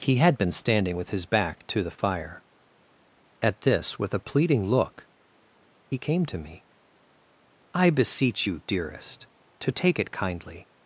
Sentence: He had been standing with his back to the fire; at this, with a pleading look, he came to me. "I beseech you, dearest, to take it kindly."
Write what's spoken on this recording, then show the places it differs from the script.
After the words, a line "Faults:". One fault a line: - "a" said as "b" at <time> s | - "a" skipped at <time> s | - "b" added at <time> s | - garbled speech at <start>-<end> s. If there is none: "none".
He had been standing with his back to the fire; at this, with a pleading look, he came to me. "I beseech you, dearest, to take it kindly."
Faults:
none